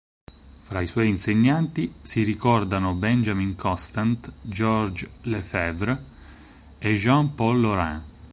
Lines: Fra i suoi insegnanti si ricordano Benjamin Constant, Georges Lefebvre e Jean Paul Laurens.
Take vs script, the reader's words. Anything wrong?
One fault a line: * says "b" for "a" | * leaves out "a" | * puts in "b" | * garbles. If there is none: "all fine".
all fine